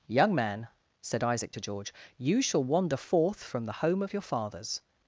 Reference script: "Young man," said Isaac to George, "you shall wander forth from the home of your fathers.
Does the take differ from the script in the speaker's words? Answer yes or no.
no